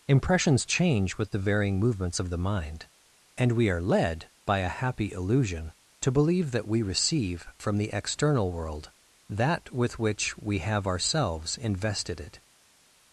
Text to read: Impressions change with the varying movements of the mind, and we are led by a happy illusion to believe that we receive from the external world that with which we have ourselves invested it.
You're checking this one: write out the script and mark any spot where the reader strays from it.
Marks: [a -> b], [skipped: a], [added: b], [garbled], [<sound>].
Impressions change with the varying movements of the mind, and we are led by a happy illusion to believe that we receive from the external world that with which we have ourselves invested it.